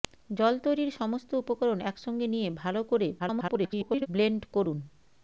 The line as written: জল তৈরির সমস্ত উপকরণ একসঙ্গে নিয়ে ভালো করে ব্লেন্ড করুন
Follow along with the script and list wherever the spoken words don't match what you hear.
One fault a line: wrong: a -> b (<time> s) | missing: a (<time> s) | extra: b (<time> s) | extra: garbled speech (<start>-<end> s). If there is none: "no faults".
extra: garbled speech (3.2-4.1 s)